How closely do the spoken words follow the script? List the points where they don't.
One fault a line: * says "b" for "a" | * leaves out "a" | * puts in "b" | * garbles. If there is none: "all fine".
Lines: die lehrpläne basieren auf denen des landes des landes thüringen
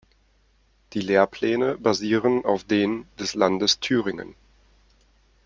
* leaves out "des landes"